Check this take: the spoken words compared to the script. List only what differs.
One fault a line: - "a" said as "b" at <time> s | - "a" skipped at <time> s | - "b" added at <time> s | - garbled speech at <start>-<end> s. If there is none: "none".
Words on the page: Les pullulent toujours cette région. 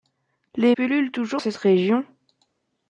none